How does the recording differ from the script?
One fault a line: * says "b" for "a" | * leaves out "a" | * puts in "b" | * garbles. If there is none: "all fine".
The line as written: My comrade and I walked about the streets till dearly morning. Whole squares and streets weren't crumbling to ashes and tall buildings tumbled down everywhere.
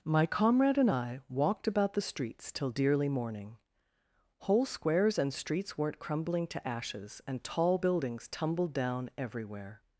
all fine